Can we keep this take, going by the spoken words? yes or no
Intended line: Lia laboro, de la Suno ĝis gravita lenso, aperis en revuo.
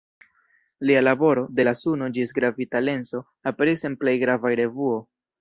no